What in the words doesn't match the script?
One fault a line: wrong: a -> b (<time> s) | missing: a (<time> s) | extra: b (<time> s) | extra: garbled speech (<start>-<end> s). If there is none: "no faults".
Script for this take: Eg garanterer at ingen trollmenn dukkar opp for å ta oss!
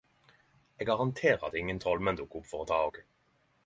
no faults